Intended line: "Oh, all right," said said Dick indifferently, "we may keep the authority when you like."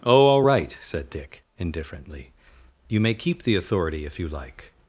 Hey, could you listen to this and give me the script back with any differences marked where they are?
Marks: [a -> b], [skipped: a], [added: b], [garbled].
"Oh, all right," said [skipped: said] Dick indifferently, ["we -> you] may keep the authority [when -> if] you like."